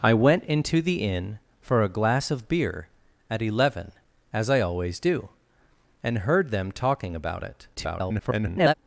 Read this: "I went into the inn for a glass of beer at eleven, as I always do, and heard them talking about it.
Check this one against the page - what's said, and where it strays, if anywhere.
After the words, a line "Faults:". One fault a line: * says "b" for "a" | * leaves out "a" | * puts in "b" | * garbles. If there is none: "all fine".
"I went into the inn for a glass of beer at eleven, as I always do, and heard them talking about it. [garbled]
Faults:
* garbles